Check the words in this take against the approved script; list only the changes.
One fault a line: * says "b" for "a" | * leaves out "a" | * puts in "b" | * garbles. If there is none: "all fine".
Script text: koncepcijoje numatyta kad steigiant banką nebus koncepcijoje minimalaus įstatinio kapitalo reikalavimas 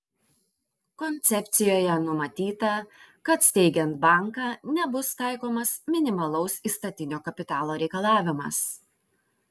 * says "taikomas" for "koncepcijoje"